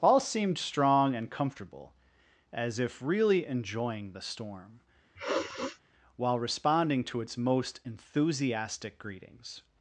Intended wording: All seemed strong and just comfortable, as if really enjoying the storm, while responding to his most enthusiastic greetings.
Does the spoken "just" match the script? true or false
false